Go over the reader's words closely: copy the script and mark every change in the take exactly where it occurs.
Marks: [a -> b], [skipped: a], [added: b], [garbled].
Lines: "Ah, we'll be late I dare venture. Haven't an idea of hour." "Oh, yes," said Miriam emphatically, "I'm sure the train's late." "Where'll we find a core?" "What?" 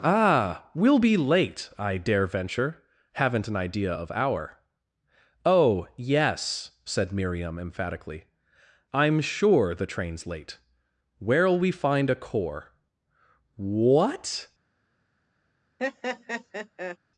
"Ah, we'll be late I dare venture. Haven't an idea of hour." "Oh, yes," said Miriam emphatically, "I'm sure the train's late." "Where'll we find a core?" "What?"